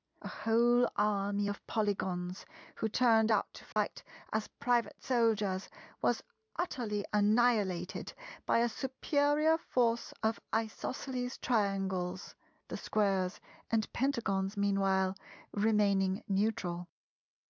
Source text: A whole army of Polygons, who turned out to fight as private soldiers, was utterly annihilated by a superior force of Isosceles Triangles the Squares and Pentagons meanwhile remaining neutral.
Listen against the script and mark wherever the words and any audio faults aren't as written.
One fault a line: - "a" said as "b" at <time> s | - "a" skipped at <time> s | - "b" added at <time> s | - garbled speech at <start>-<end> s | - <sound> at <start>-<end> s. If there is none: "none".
- dropout at 3.7-3.8 s